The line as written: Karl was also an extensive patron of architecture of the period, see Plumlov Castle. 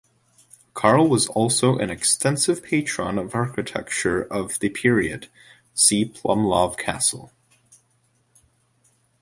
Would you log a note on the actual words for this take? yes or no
no